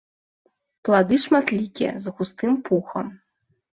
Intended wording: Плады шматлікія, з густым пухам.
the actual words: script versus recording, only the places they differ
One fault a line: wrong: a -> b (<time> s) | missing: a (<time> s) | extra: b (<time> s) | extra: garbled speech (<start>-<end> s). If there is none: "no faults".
no faults